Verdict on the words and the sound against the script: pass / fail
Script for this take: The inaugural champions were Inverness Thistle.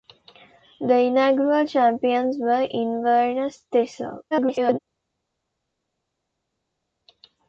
fail